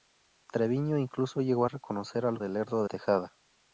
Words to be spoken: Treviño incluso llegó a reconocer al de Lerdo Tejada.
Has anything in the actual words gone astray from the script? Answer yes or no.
no